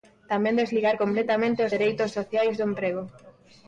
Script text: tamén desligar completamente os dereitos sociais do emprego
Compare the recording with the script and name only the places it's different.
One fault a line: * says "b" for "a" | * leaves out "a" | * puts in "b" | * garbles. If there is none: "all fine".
all fine